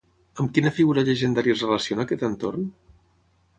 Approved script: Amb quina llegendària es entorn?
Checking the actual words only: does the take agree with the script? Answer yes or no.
no